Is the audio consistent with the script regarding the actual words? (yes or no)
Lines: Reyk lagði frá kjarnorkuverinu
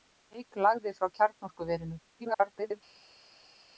no